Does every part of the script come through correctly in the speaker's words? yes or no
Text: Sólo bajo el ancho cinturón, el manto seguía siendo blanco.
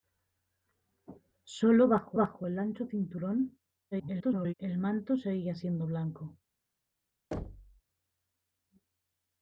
no